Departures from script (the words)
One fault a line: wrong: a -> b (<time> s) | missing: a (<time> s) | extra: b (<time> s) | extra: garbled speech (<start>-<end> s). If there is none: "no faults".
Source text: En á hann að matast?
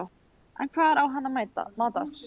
extra: hvar (0.8 s)